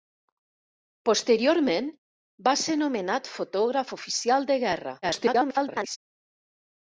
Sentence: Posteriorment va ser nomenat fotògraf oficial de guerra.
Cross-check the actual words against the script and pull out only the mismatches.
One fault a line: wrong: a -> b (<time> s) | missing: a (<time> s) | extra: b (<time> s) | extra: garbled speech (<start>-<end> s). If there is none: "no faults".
extra: garbled speech (5.0-6.0 s)